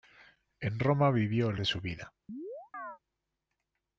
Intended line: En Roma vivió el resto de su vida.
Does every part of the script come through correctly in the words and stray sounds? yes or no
no